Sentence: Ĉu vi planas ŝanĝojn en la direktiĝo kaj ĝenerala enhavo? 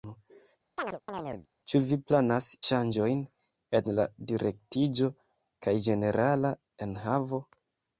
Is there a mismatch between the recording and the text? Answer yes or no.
no